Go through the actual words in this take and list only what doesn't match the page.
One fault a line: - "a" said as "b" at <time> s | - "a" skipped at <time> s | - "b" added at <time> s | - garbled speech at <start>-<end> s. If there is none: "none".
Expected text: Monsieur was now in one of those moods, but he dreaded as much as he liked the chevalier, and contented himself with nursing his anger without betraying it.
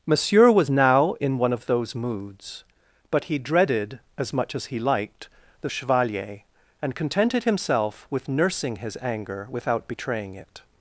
none